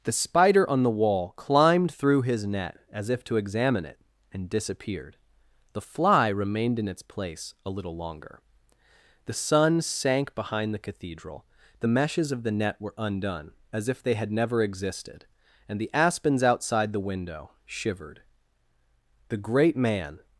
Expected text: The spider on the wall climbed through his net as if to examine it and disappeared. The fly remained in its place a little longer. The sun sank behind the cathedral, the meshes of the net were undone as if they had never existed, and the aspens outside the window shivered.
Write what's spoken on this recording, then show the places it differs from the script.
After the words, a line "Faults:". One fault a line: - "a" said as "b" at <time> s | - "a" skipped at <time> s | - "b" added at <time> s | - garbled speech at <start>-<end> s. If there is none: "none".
The spider on the wall climbed through his net as if to examine it and disappeared. The fly remained in its place a little longer. The sun sank behind the cathedral, the meshes of the net were undone as if they had never existed, and the aspens outside the window shivered. The great man
Faults:
- "The great man" added at 19.3 s